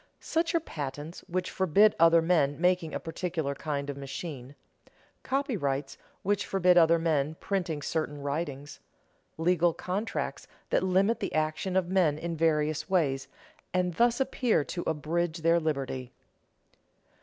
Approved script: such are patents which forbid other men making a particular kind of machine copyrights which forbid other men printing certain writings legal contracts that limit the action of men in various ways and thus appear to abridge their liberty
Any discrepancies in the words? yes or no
no